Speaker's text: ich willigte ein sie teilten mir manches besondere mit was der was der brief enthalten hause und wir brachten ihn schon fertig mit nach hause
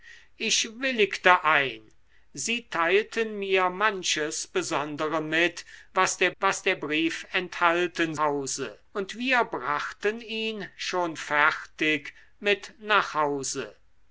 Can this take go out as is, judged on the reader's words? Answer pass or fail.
pass